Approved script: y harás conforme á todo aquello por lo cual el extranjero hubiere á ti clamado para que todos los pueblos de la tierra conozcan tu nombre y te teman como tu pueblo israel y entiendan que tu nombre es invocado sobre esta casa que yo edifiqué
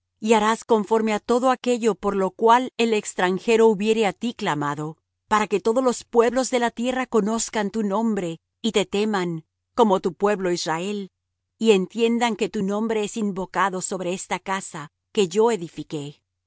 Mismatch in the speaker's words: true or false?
false